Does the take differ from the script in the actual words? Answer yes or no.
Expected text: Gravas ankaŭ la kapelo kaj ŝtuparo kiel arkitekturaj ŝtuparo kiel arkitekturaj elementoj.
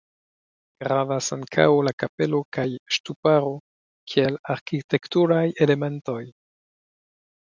yes